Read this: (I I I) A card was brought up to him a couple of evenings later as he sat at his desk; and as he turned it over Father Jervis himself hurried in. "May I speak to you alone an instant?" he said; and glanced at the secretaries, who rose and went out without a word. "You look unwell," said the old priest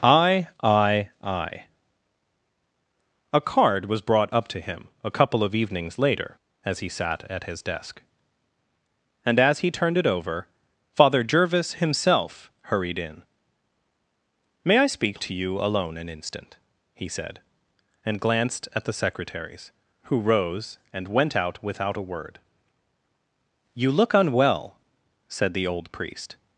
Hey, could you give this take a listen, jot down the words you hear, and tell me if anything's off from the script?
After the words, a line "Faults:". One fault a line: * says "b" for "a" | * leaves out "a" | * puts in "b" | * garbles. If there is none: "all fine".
(I I I) A card was brought up to him a couple of evenings later as he sat at his desk; and as he turned it over Father Jervis himself hurried in. "May I speak to you alone an instant?" he said; and glanced at the secretaries, who rose and went out without a word. "You look unwell," said the old priest
Faults:
all fine